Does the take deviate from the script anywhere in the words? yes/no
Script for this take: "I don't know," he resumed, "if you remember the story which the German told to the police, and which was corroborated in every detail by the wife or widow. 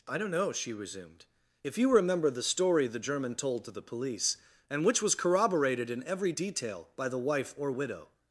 yes